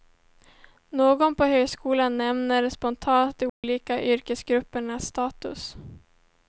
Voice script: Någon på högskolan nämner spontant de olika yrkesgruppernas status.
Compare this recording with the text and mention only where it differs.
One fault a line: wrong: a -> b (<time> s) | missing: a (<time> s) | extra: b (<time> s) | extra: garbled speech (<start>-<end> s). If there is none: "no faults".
no faults